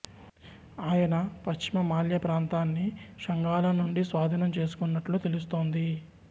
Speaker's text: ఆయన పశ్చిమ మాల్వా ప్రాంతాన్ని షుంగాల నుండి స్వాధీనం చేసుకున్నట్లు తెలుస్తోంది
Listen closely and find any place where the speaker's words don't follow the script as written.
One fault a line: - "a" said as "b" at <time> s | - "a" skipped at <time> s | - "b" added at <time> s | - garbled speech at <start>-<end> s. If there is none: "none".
none